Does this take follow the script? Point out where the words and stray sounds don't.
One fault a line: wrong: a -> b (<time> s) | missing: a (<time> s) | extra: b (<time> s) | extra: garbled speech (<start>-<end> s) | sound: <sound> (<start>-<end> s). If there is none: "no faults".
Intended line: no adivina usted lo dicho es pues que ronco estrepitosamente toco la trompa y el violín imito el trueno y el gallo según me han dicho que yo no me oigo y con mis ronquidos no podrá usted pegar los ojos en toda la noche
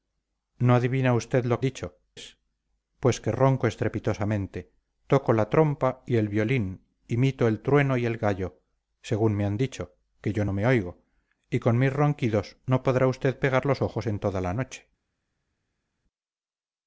no faults